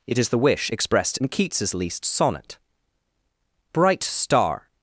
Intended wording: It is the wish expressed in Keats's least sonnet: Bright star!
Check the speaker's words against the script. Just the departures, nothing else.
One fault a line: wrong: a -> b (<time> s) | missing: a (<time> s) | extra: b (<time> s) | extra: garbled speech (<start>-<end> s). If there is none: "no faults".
no faults